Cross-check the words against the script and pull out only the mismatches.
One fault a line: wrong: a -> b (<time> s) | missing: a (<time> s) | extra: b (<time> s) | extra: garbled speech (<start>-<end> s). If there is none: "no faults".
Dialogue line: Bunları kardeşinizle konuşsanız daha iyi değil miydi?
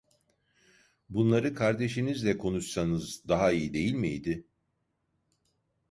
no faults